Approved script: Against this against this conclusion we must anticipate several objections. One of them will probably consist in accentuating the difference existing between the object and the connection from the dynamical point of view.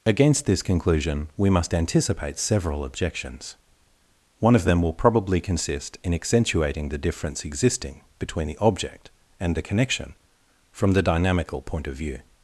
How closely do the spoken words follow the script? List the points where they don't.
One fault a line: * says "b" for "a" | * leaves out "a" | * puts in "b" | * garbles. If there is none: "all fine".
* leaves out "against this"